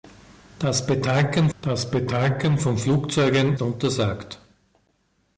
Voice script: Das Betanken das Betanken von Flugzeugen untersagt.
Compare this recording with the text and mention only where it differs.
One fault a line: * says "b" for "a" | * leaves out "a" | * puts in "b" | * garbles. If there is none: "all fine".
all fine